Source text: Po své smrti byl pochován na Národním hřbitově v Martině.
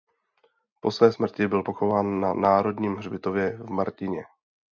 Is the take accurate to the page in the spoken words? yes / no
yes